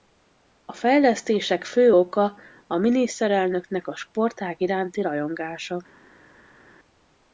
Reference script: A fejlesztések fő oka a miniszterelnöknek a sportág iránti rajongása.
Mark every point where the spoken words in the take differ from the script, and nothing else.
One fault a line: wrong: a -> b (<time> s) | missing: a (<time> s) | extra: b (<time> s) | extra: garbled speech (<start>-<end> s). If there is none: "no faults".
no faults